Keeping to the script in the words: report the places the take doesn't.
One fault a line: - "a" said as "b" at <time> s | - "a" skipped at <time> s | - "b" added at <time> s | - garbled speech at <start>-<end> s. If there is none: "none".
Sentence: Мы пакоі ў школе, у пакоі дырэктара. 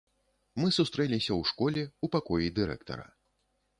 - "пакоі" said as "сустрэліся" at 0.8 s